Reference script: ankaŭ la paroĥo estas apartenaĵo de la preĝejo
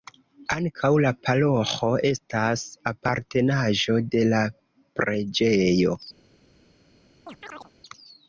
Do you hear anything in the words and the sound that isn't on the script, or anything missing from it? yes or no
yes